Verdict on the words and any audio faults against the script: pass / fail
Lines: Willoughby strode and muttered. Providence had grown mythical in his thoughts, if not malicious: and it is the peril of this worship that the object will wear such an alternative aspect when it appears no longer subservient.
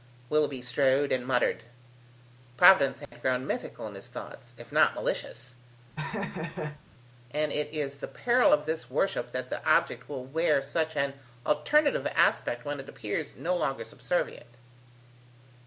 fail